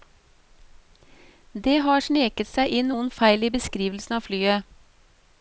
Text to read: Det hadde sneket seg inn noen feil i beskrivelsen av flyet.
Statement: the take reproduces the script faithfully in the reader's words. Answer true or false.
false